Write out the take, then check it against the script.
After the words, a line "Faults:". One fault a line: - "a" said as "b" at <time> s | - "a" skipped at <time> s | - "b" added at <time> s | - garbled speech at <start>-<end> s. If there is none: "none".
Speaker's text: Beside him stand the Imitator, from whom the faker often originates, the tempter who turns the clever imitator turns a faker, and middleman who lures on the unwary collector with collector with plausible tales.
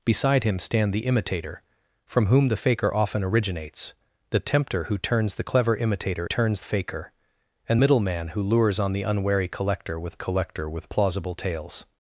Beside him stand the Imitator, from whom the faker often originates, the tempter who turns the clever imitator turns a faker, and middleman who lures on the unwary collector with collector with plausible tales.
Faults:
none